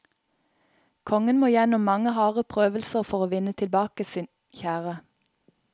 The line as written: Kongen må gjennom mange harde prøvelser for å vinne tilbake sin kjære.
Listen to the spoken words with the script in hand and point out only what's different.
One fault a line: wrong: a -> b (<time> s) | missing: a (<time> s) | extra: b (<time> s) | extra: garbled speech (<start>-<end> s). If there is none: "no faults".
no faults